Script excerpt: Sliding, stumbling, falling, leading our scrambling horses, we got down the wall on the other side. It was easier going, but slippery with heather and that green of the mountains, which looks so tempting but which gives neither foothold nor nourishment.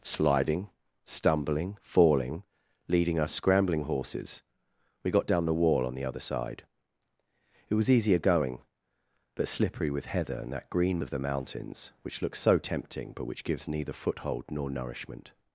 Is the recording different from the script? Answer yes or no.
no